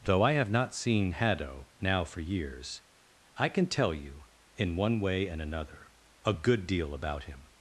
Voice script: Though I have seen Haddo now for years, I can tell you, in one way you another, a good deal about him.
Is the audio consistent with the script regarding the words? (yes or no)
no